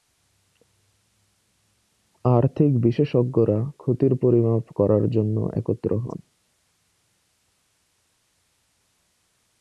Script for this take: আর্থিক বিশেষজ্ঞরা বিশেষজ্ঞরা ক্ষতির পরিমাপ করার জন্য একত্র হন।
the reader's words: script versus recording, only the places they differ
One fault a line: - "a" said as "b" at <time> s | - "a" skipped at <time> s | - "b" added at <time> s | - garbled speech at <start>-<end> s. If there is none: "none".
- "বিশেষজ্ঞরা" skipped at 3.6 s